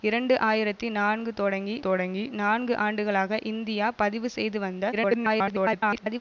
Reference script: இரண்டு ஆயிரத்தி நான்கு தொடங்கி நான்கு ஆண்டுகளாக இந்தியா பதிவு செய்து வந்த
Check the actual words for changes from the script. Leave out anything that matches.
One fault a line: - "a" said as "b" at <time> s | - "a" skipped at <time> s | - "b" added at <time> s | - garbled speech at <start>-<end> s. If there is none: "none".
- "தொடங்கி" added at 1.8 s
- garbled speech at 4.9-6.2 s